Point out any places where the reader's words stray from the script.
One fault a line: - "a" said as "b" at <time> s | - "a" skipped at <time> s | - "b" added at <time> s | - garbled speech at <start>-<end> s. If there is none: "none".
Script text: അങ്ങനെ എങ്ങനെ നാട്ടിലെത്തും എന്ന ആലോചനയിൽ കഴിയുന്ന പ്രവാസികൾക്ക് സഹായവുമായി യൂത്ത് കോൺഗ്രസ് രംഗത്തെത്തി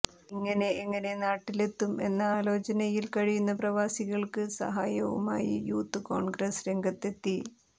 - "അങ്ങനെ" said as "ഇങ്ങനെ" at 0.3 s